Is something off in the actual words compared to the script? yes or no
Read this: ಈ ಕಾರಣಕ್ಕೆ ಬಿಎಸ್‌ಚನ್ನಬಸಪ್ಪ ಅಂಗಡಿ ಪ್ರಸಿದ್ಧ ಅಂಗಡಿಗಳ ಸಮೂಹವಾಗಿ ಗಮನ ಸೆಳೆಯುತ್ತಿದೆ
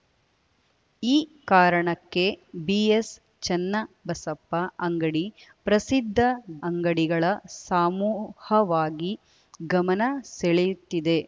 no